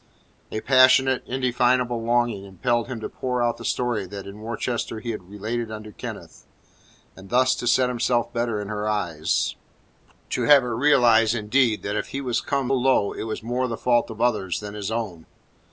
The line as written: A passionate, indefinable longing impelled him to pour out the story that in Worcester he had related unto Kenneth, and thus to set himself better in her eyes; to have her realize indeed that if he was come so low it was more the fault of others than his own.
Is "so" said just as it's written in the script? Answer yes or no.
no